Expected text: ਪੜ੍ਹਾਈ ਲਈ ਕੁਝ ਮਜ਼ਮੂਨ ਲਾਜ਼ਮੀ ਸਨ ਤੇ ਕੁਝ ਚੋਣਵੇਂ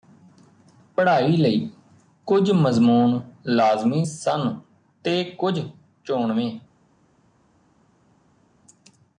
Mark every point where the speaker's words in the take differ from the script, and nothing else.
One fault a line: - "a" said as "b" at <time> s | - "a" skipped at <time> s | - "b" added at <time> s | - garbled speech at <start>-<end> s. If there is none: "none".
none